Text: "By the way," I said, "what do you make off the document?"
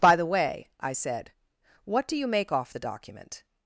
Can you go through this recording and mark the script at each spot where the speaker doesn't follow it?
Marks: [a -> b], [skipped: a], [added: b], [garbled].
"By the way," I said, "what do you make off the document?"